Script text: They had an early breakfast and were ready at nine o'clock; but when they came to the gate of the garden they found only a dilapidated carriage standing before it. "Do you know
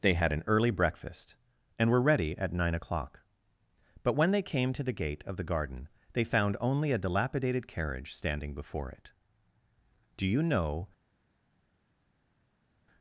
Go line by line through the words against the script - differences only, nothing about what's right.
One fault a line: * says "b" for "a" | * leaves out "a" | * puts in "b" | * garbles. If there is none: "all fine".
all fine